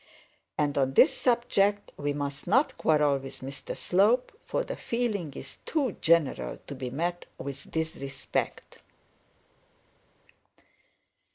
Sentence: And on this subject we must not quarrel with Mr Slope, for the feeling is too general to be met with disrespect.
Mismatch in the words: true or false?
false